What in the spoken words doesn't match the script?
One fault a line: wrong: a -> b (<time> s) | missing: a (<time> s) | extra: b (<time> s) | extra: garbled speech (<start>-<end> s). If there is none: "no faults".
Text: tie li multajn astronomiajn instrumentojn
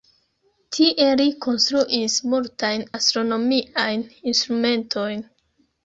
extra: konstruis (1.5 s)